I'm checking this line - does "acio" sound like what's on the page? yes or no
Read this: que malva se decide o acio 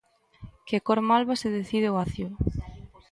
yes